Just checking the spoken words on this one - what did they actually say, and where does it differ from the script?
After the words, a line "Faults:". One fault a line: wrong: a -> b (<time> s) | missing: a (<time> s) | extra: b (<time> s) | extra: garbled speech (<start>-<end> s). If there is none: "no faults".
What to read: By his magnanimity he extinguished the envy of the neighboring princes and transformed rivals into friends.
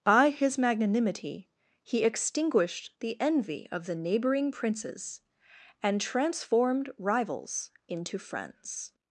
By his magnanimity he extinguished the envy of the neighboring princes and transformed rivals into friends.
Faults:
no faults